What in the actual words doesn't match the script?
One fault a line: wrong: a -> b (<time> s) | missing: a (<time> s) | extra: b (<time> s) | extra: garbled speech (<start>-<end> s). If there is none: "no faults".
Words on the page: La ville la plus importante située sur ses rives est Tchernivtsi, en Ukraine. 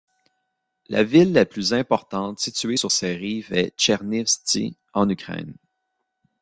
no faults